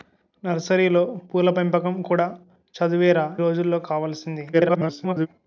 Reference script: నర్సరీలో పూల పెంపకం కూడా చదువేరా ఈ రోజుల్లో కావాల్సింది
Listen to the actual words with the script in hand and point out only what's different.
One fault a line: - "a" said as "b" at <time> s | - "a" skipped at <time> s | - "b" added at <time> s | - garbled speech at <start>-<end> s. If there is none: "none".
- "ఈ" skipped at 3.2 s
- garbled speech at 4.5-5.3 s